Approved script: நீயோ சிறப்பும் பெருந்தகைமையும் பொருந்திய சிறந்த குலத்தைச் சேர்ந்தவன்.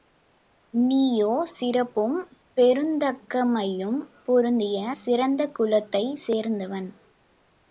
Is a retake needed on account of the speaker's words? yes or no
no